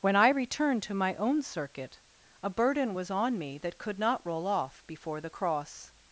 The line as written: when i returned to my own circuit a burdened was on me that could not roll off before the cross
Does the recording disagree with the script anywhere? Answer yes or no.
yes